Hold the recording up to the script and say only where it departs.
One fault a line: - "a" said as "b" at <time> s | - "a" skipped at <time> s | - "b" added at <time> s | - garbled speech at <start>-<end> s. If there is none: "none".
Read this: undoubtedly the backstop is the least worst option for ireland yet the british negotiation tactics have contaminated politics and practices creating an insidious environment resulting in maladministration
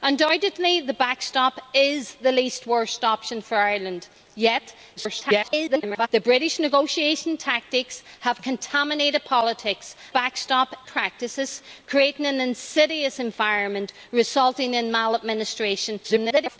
- garbled speech at 5.0-6.1 s
- "and" said as "backstop" at 10.1 s
- garbled speech at 16.0-16.6 s